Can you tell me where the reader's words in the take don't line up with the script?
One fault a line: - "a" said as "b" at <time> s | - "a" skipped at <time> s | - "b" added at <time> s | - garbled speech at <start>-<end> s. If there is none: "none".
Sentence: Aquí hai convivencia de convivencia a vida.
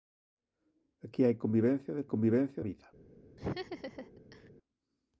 none